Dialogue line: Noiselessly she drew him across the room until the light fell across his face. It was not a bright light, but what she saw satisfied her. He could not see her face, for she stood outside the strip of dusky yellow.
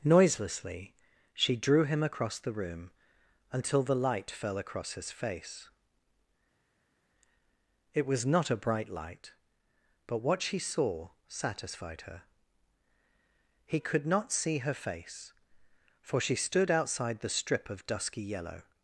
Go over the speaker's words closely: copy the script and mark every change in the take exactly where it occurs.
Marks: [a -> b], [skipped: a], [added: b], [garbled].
Noiselessly she drew him across the room until the light fell across his face. It was not a bright light, but what she saw satisfied her. He could not see her face, for she stood outside the strip of dusky yellow.